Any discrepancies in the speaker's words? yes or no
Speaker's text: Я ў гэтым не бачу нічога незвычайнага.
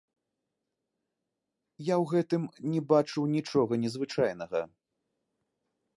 no